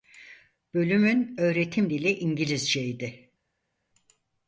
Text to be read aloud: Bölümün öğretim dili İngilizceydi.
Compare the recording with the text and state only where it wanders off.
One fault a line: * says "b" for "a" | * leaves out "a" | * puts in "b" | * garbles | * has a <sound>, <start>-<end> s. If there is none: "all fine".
all fine